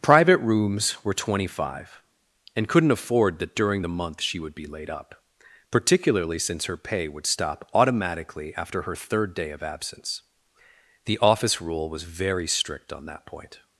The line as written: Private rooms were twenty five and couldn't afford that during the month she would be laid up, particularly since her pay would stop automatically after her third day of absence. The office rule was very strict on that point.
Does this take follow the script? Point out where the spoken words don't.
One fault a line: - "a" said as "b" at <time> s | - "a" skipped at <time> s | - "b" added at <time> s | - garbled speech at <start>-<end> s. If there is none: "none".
none